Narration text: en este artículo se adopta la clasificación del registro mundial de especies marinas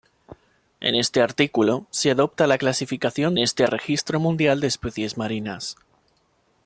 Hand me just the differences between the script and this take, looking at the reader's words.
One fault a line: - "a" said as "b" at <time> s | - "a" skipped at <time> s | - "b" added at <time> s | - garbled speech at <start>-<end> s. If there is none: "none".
- "del" said as "este" at 3.4 s